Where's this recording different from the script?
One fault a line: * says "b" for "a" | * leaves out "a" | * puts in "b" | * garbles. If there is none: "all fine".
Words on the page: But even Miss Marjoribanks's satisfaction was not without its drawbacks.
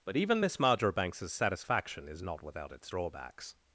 * says "is" for "was"